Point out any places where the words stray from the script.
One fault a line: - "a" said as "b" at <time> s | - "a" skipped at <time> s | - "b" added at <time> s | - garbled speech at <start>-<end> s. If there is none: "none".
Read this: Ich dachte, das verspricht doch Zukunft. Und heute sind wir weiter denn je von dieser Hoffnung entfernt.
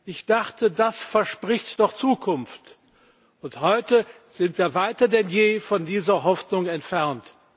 none